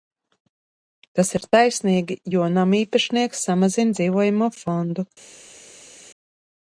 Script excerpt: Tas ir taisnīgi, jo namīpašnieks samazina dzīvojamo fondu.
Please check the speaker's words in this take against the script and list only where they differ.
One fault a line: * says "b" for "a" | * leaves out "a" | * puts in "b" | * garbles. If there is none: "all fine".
all fine